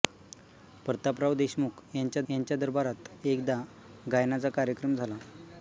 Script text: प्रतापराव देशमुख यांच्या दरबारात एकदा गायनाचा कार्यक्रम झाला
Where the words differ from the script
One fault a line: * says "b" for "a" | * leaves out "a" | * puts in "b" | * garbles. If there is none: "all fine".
* puts in "यांच्या"